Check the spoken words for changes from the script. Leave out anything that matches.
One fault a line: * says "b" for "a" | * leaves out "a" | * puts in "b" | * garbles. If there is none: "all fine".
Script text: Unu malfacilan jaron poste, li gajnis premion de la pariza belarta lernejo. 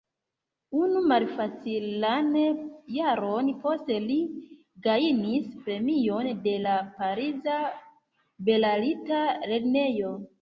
all fine